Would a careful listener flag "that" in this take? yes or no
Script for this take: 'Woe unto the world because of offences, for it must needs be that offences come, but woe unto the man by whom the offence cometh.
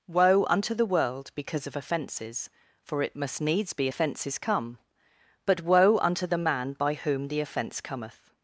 yes